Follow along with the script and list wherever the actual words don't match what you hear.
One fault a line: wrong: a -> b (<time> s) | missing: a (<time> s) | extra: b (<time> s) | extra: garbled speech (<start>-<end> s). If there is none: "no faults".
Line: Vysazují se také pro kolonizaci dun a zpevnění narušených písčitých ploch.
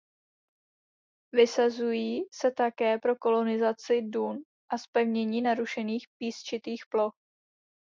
no faults